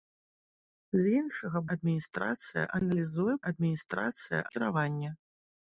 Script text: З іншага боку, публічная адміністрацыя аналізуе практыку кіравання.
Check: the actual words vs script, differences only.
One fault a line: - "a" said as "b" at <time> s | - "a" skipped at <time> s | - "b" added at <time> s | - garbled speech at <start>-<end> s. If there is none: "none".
- "боку публічная" skipped at 1.6 s
- "практыку" said as "адміністрацыя" at 3.5 s